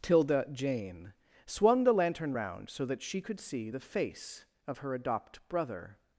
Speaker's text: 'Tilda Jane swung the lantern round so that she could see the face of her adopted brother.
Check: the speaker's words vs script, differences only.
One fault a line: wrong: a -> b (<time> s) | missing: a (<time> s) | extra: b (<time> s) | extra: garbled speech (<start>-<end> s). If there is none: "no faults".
wrong: adopted -> adopt (4.9 s)